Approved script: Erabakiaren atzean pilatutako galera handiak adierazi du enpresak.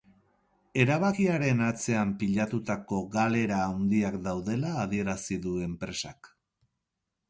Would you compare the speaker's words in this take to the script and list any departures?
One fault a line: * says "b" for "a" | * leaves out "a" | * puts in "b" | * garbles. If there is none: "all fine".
* puts in "daudela"